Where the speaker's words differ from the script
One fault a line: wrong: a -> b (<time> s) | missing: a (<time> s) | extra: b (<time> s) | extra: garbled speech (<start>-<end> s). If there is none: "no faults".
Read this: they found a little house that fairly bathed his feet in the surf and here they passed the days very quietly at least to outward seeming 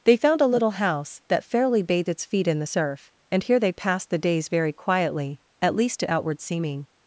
wrong: his -> its (2.1 s)